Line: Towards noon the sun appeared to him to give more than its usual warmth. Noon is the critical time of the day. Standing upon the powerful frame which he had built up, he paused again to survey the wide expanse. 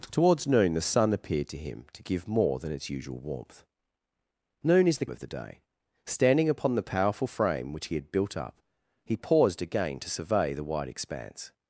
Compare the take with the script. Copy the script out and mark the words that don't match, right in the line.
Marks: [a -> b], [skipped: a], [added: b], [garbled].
Towards noon the sun appeared to him to give more than its usual warmth. Noon is the [skipped: critical time] of the day. Standing upon the powerful frame which he had built up, he paused again to survey the wide expanse.